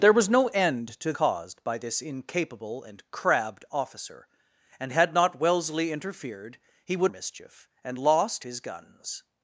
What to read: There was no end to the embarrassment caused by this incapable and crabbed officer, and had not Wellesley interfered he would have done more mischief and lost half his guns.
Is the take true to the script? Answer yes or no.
no